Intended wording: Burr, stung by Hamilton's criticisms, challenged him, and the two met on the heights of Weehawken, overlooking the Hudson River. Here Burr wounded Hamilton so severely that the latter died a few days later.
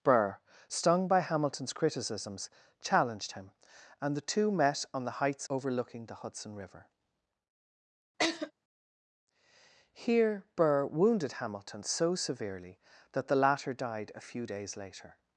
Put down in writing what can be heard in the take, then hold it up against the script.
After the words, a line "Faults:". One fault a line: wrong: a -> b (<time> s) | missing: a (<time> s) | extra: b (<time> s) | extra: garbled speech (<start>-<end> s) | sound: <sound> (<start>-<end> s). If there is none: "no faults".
Burr, stung by Hamilton's criticisms, challenged him, and the two met on the heights overlooking the Hudson River. Here Burr wounded Hamilton so severely that the latter died a few days later.
Faults:
missing: of Weehawken (5.5 s)
sound: laugh (8.2-8.5 s)